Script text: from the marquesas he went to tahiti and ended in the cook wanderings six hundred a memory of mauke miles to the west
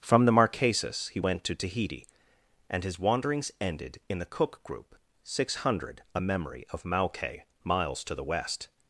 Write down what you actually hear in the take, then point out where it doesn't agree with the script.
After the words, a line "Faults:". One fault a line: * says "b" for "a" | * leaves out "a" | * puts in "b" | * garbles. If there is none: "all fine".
from the marquesas he went to tahiti and his wanderings ended in the cook group six hundred a memory of mauke miles to the west
Faults:
* puts in "his wanderings"
* says "group" for "wanderings"